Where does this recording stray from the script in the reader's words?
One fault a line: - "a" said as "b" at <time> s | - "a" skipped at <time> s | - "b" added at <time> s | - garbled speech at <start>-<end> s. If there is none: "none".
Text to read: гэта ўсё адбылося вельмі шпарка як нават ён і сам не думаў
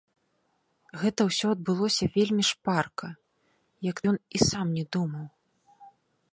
- "нават" skipped at 4.0 s